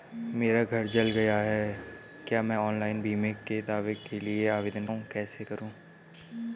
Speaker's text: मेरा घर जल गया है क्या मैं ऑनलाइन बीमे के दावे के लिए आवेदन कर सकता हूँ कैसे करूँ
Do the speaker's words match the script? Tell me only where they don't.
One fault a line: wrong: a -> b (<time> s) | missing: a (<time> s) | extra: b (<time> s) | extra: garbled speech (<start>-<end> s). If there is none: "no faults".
missing: कर सकता (4.8 s)